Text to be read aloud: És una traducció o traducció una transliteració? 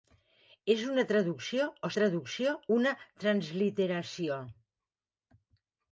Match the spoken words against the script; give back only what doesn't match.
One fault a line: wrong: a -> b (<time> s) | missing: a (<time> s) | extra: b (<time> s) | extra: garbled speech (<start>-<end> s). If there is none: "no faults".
no faults